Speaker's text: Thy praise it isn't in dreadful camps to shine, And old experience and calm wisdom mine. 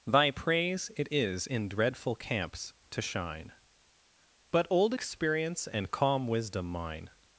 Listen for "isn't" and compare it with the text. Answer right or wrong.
wrong